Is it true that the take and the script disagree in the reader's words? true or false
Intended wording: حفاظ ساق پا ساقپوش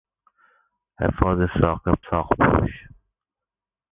true